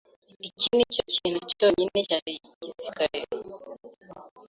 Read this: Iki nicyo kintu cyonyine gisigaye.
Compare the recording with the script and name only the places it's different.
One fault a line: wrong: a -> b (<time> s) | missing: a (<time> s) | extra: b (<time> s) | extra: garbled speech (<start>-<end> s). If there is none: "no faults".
extra: cyari (2.1 s)